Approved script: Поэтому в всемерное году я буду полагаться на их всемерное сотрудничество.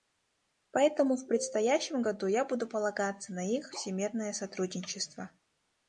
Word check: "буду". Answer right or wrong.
right